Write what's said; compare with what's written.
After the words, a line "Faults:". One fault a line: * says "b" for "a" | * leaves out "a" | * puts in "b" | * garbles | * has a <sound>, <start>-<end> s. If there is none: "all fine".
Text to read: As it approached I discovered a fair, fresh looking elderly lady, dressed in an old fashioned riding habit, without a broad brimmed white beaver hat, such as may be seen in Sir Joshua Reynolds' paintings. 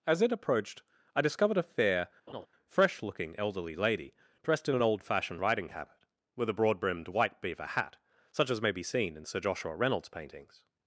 As it approached I discovered a fair, fresh looking elderly lady, dressed in an old fashioned riding habit, with a broad brimmed white beaver hat, such as may be seen in Sir Joshua Reynolds' paintings.
Faults:
* has a laugh, 2.3-2.5 s
* says "with" for "without"